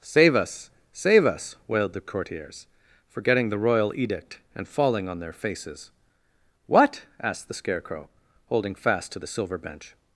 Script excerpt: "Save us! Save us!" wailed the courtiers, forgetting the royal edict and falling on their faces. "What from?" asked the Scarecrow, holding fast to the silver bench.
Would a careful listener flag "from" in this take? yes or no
yes